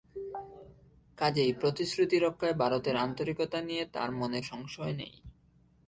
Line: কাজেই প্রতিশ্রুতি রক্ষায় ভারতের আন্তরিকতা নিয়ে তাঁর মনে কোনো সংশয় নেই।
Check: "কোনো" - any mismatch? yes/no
yes